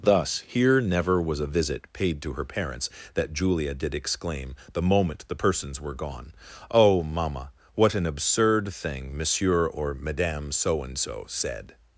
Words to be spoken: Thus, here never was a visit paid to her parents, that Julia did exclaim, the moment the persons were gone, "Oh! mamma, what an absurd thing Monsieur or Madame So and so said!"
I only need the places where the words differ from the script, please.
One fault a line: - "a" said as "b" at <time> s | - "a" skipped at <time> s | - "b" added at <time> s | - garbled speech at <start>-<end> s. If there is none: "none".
none